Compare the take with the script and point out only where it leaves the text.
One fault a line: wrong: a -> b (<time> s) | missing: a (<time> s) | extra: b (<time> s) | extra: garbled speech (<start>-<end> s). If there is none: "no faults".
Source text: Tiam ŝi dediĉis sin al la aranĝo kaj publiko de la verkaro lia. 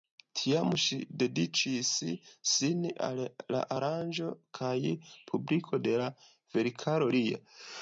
no faults